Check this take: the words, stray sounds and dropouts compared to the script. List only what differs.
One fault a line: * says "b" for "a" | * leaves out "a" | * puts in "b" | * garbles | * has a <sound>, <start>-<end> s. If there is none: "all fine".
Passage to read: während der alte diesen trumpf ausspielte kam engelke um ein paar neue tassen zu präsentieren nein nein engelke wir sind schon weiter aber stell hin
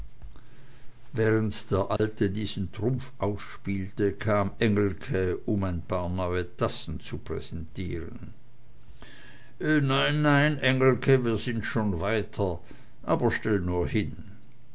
* has a dropout, 2.0-2.0 s
* puts in "nur"